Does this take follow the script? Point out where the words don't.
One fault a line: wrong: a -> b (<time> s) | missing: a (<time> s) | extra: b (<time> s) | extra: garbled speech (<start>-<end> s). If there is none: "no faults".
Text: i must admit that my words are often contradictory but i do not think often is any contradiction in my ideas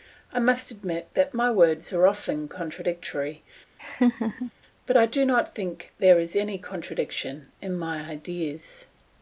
wrong: often -> there (6.0 s)